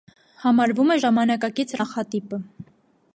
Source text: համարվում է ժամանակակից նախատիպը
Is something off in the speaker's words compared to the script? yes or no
no